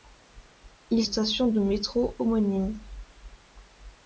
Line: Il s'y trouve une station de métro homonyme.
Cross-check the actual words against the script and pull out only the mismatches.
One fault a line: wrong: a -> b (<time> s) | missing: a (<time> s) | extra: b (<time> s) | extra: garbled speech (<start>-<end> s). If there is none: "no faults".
missing: s'y trouve une (1.0 s)